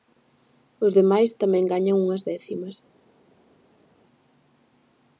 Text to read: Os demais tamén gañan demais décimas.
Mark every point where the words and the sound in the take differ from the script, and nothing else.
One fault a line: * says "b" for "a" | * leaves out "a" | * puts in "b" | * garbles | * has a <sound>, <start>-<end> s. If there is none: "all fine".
* says "unhas" for "demais"